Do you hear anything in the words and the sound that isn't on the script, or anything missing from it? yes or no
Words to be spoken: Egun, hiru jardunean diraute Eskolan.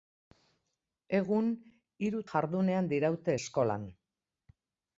no